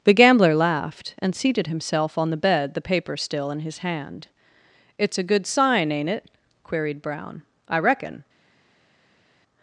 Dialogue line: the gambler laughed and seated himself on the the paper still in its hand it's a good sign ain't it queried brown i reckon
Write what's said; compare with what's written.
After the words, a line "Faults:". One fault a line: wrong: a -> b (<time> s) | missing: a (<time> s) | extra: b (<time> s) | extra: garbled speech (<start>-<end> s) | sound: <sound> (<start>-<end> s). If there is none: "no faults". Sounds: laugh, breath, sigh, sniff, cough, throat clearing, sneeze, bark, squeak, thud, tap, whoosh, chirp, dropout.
the gambler laughed and seated himself on the bed the paper still in his hand it's a good sign ain't it queried brown i reckon
Faults:
extra: bed (2.4 s)
wrong: its -> his (3.6 s)